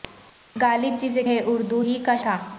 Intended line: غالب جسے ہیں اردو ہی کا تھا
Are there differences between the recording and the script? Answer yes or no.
no